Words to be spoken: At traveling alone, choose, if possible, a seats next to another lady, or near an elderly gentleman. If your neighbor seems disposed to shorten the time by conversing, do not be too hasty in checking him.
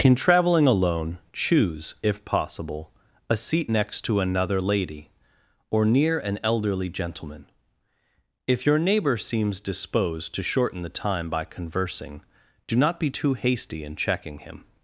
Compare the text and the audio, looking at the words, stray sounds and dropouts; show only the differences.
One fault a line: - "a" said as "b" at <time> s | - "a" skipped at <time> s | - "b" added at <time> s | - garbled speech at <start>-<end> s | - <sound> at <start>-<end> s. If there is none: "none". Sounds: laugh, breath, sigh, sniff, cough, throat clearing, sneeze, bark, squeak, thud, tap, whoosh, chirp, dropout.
- "At" said as "In" at 0.0 s
- "seats" said as "seat" at 3.4 s